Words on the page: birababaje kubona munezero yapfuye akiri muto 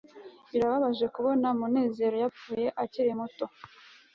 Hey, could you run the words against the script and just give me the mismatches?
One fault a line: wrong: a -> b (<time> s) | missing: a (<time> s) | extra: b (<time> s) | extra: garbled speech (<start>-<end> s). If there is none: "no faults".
no faults